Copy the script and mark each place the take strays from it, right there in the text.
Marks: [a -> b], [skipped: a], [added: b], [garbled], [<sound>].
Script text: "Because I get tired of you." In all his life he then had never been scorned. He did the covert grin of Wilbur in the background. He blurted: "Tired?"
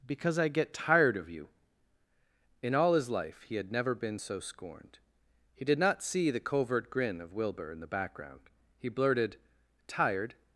"Because I get tired of you." In all his life he [skipped: then] had never been [added: so] scorned. He did [added: not see] the covert grin of Wilbur in the background. He blurted: "Tired?"